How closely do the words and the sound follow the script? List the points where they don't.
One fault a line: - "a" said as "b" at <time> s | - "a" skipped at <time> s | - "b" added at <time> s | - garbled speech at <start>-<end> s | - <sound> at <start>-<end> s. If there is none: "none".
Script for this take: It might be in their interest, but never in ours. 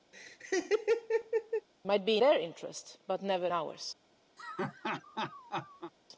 - laugh at 0.1-1.7 s
- "in" skipped at 2.2 s
- "in" skipped at 3.5 s
- laugh at 4.4-5.9 s